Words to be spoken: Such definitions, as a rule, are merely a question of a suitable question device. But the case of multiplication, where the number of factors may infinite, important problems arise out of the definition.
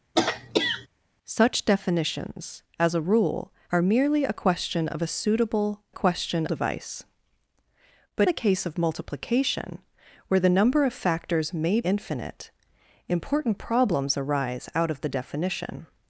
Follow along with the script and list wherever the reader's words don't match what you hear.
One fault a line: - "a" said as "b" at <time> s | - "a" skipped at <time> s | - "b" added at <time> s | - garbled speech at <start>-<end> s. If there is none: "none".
none